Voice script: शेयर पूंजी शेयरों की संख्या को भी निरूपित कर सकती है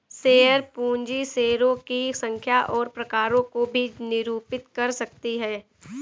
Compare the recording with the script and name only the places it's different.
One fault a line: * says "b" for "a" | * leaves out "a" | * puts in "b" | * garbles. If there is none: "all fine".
* puts in "और प्रकारों"